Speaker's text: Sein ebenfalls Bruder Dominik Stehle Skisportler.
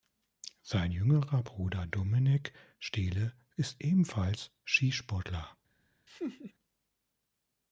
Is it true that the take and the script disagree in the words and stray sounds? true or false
true